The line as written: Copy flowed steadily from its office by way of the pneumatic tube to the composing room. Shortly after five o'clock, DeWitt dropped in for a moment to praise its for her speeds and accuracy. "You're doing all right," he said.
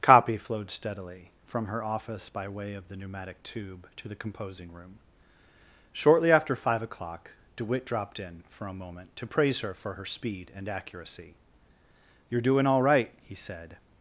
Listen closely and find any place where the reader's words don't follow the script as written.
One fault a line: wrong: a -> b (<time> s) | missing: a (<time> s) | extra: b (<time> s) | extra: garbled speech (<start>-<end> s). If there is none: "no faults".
wrong: its -> her (1.7 s)
wrong: its -> her (9.6 s)
wrong: speeds -> speed (10.0 s)